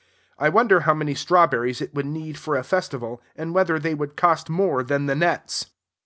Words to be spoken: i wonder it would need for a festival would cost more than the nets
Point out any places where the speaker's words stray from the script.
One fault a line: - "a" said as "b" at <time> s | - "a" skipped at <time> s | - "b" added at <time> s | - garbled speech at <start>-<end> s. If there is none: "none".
- "how many strawberries" added at 0.8 s
- "and whether they" added at 3.4 s